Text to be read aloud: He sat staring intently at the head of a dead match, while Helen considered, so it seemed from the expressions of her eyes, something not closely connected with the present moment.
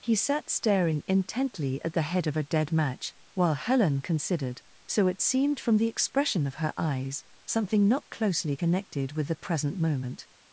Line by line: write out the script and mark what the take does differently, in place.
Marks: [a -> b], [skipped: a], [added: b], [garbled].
He sat staring intently at the head of a dead match, while Helen considered, so it seemed from the [expressions -> expression] of her eyes, something not closely connected with the present moment.